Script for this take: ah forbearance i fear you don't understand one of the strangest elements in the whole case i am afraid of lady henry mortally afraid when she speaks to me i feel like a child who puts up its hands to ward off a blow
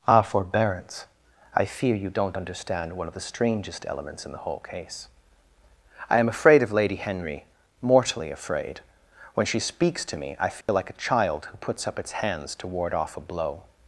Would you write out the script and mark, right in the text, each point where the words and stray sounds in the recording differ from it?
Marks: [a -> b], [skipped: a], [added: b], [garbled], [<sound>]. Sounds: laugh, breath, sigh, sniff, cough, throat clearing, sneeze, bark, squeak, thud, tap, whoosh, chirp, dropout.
ah forbearance i fear you don't understand one of the strangest elements in the whole case i am afraid of lady henry mortally afraid when she speaks to me i feel [dropout] like a child who puts up its hands to ward off a blow